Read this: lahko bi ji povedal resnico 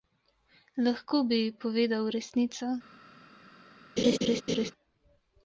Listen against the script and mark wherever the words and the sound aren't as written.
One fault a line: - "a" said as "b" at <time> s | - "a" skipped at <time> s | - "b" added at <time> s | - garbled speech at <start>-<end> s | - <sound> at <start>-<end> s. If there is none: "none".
- laugh at 4.0-4.7 s